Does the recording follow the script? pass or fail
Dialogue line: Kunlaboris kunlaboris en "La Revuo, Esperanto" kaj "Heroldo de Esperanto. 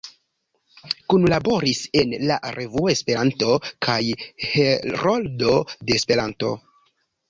fail